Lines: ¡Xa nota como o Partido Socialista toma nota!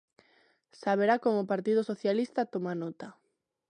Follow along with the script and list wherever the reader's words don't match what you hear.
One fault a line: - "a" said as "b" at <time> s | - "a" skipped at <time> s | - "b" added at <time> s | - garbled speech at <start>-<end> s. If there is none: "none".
- "nota" said as "verá" at 1.0 s